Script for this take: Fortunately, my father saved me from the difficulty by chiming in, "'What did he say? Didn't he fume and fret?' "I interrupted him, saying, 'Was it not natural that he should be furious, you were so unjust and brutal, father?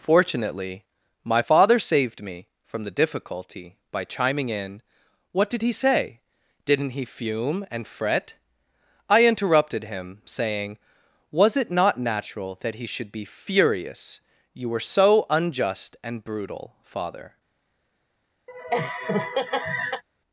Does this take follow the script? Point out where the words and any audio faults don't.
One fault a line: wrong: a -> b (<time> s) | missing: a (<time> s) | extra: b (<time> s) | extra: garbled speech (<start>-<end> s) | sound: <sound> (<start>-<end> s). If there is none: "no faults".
sound: laugh (18.5-20.0 s)